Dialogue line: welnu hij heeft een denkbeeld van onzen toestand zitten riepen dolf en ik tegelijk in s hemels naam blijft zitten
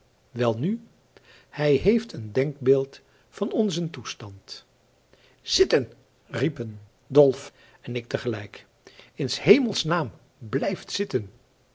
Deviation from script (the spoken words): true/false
false